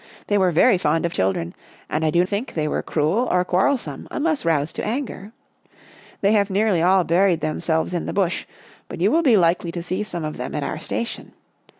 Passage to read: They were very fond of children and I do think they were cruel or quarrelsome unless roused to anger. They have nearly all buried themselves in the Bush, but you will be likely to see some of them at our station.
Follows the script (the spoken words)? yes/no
yes